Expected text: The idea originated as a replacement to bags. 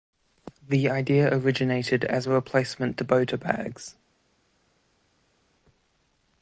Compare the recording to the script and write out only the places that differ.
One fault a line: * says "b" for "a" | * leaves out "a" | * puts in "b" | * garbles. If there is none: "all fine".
* puts in "bota"